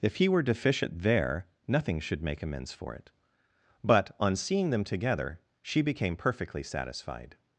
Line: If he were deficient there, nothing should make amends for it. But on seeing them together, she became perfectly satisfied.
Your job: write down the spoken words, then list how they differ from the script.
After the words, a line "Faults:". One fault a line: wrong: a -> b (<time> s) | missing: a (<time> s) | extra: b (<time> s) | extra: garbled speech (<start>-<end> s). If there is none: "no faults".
If he were deficient there, nothing should make amends for it. But on seeing them together, she became perfectly satisfied.
Faults:
no faults